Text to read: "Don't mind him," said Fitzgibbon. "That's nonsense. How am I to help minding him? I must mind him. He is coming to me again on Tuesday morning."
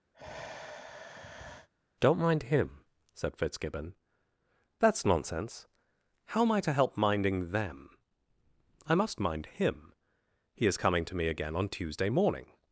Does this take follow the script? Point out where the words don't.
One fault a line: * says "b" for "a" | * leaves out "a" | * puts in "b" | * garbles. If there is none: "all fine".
* says "them" for "him"